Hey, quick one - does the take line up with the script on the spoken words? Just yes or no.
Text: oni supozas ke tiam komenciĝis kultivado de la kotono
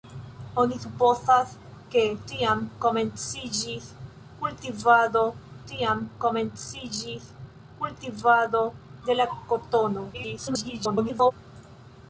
no